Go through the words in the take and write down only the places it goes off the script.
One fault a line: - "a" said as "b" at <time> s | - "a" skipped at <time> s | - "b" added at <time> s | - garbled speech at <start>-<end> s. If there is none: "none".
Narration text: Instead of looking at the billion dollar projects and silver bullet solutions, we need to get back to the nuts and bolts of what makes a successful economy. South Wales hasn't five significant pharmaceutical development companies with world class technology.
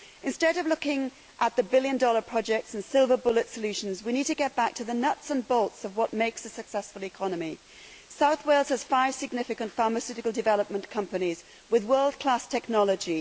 - "hasn't" said as "has" at 8.7 s